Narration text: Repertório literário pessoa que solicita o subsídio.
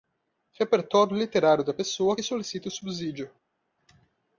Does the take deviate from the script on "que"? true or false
false